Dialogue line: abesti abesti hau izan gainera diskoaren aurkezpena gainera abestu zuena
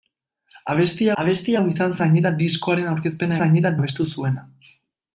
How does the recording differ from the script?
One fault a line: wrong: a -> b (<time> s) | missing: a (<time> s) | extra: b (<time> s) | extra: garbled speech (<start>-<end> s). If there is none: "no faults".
no faults